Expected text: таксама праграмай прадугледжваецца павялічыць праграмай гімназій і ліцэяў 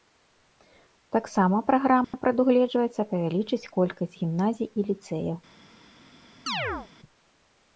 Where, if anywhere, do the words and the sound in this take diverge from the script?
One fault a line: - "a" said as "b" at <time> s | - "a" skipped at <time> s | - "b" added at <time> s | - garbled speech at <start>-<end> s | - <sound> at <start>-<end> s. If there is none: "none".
- dropout at 2.0-2.1 s
- "праграмай" said as "колькасць" at 3.7 s
- chirp at 6.5-6.9 s